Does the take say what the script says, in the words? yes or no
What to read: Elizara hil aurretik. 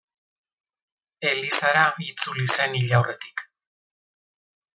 no